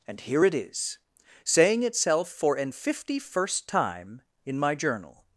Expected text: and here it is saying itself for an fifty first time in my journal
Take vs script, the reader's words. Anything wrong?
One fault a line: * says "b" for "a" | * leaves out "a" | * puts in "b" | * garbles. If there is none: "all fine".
all fine